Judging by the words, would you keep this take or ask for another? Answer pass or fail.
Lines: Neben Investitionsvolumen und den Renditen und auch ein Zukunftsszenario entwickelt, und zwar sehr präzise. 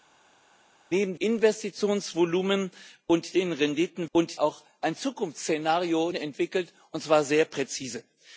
pass